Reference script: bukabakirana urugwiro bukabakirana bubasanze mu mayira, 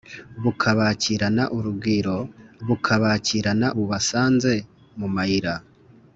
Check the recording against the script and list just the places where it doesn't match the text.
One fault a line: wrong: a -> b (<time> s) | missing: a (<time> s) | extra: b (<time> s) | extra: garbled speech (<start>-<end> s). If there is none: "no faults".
no faults